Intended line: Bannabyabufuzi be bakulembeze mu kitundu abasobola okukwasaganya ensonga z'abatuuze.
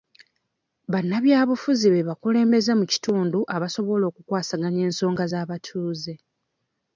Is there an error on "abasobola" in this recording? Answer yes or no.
no